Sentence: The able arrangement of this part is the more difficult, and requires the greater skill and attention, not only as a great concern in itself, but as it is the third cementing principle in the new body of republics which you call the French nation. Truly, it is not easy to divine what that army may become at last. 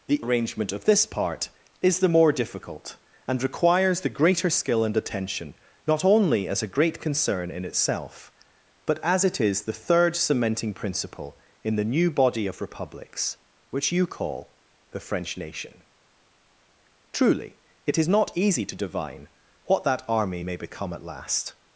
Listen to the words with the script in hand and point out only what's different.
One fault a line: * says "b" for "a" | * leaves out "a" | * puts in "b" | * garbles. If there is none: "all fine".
* leaves out "able"